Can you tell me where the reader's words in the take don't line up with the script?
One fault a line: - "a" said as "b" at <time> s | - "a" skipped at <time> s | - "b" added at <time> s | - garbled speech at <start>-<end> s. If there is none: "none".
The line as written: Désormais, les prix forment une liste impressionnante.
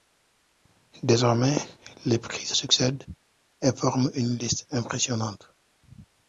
- "se succèdent et" added at 2.4 s